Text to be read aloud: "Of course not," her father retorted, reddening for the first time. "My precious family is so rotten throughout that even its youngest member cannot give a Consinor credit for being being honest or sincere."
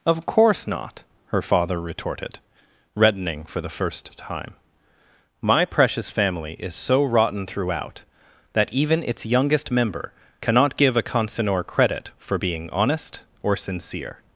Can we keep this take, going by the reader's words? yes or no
no